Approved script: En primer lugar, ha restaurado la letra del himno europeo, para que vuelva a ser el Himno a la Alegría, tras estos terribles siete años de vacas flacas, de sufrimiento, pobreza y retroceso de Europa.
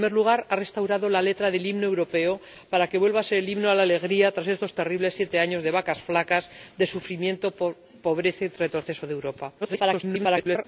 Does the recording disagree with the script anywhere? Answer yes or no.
yes